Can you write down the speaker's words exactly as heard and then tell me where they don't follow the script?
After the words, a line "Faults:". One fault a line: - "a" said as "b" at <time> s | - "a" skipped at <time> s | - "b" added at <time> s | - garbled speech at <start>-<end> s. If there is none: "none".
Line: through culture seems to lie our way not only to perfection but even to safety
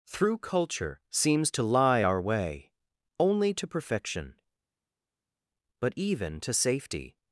through culture seems to lie our way only to perfection but even to safety
Faults:
- "not" skipped at 2.7 s